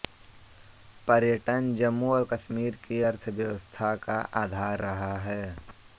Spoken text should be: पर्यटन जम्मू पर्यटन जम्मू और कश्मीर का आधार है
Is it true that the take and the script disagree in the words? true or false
true